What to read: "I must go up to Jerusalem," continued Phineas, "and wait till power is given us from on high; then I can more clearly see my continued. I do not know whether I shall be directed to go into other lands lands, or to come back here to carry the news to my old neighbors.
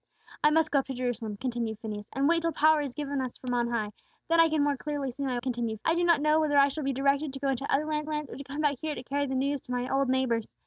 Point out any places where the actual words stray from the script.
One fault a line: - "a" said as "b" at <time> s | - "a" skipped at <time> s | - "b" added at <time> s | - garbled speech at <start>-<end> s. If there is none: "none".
none